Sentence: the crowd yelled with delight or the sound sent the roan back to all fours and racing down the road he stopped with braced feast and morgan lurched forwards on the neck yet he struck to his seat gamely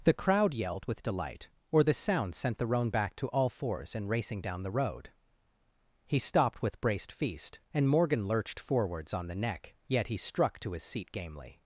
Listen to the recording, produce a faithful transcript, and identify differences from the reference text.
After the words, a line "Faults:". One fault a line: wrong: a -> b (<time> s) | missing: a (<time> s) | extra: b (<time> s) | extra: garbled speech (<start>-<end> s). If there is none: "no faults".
the crowd yelled with delight or the sound sent the roan back to all fours and racing down the road he stopped with braced feast and morgan lurched forwards on the neck yet he struck to his seat gamely
Faults:
no faults